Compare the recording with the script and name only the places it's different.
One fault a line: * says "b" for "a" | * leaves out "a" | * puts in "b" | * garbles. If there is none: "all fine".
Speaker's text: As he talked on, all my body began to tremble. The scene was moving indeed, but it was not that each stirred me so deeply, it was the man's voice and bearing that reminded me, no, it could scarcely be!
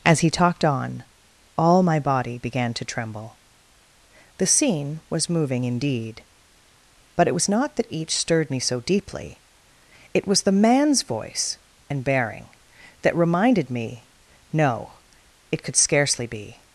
all fine